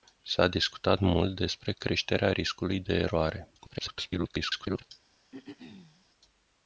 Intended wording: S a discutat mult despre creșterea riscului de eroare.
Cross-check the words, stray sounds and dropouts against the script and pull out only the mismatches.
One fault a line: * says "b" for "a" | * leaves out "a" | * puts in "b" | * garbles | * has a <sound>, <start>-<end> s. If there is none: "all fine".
* garbles
* has a throat clearing, 5.3-6.1 s